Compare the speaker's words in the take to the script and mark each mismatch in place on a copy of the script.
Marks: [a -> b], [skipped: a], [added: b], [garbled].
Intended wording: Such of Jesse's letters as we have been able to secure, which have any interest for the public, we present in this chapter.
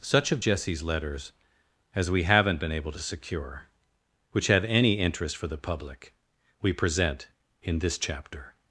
Such of Jesse's letters as we [have -> haven't] been able to secure, which have any interest for the public, we present in this chapter.